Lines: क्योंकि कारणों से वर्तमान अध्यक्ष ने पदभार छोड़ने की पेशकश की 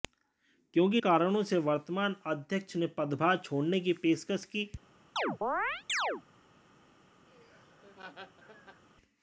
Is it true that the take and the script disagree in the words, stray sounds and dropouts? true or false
true